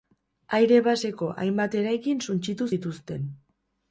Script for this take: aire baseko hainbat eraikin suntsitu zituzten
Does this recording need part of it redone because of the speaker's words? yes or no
no